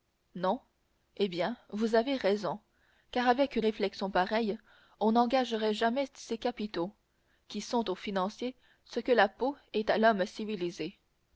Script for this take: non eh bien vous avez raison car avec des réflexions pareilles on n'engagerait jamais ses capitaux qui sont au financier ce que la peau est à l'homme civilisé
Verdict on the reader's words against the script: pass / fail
fail